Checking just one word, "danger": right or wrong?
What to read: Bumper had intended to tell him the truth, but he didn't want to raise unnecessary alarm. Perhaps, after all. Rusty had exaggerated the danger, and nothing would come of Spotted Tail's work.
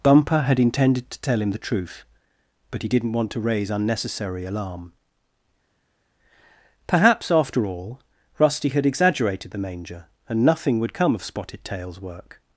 wrong